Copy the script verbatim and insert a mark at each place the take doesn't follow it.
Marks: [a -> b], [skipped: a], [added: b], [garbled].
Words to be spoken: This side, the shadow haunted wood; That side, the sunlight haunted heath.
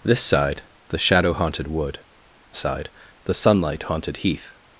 This side, the shadow haunted wood; [skipped: That] side, the sunlight haunted heath.